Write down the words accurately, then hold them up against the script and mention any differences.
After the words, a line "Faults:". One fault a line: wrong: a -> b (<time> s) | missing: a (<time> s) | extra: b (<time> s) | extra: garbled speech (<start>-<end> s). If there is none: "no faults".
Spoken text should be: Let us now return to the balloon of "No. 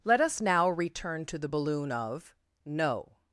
Let us now return to the balloon of "No.
Faults:
no faults